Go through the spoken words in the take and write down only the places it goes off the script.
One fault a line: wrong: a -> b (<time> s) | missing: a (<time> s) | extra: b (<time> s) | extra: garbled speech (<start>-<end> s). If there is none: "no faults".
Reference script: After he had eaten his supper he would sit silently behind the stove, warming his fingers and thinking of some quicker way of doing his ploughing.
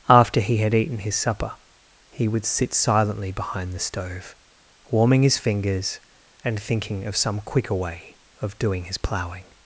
no faults